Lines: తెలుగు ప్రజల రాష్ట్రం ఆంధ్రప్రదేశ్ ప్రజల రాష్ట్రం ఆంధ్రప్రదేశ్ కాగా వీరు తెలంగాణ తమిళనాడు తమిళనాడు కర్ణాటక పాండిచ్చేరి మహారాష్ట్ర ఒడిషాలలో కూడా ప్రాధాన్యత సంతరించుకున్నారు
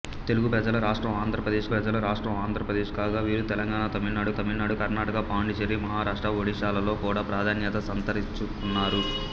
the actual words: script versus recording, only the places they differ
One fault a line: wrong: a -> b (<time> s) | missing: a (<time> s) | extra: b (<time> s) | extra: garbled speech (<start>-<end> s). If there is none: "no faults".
no faults